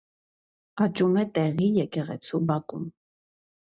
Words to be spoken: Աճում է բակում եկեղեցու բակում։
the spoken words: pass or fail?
fail